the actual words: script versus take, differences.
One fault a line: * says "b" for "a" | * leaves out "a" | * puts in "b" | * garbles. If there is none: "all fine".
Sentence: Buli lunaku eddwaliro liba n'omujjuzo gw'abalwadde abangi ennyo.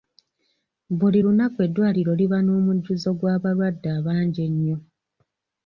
all fine